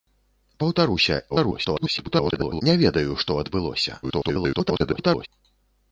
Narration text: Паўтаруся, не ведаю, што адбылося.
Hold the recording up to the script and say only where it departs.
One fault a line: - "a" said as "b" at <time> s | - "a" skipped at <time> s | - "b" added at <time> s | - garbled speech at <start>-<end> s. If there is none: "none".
- garbled speech at 1.3-2.6 s
- garbled speech at 4.0-5.3 s